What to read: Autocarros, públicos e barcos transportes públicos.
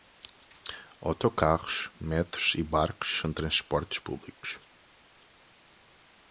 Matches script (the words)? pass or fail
fail